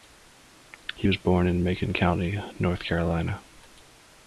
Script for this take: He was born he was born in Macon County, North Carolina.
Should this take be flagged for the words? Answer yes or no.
yes